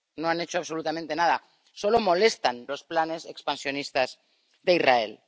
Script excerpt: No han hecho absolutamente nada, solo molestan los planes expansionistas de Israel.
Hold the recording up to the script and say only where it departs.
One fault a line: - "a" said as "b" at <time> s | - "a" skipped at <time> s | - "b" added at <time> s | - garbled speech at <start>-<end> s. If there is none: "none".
none